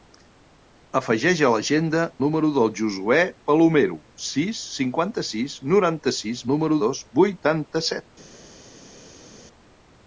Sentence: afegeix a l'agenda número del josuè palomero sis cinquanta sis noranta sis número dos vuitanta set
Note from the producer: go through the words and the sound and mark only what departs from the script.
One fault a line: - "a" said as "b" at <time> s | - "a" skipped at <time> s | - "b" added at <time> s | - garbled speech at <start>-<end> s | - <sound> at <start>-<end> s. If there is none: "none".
none